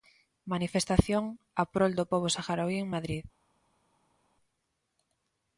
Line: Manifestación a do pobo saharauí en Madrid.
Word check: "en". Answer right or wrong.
right